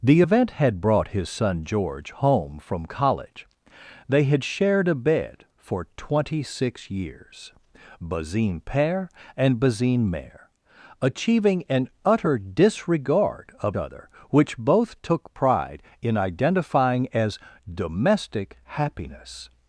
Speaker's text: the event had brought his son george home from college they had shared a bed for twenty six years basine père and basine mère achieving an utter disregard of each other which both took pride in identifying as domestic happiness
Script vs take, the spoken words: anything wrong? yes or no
yes